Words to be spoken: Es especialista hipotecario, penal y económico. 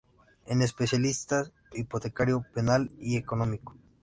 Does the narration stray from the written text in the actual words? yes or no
no